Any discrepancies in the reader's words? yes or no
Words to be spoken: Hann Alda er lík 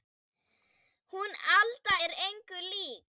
yes